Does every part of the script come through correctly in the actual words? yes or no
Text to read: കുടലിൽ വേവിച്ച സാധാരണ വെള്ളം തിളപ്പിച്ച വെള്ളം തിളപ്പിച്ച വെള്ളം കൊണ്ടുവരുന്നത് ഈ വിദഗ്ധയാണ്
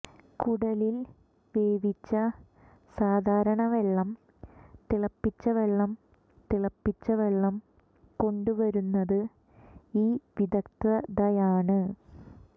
yes